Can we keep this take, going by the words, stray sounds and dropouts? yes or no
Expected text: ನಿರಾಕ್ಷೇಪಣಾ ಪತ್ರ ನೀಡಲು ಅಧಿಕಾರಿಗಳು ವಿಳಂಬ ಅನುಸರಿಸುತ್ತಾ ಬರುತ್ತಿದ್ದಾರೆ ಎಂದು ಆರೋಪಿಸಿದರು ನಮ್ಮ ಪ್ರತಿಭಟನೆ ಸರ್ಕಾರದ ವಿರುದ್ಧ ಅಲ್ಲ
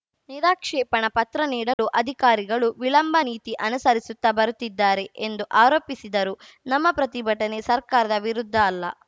no